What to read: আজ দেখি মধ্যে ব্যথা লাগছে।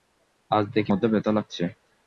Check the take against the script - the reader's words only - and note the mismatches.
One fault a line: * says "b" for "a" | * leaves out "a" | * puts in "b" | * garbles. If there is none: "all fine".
all fine